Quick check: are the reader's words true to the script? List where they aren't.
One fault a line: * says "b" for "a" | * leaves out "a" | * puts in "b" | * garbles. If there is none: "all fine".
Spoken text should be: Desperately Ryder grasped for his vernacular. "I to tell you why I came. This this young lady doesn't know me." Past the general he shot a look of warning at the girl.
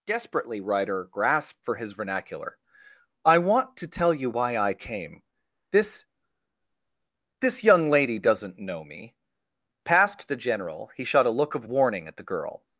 * puts in "want"